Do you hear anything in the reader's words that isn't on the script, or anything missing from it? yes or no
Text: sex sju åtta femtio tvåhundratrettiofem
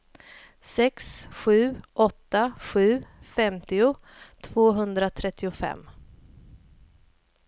yes